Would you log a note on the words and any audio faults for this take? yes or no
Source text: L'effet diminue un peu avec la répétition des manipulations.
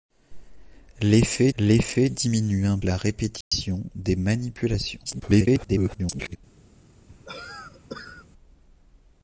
yes